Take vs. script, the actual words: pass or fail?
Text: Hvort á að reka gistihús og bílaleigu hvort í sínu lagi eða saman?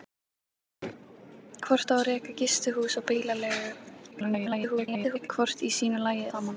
fail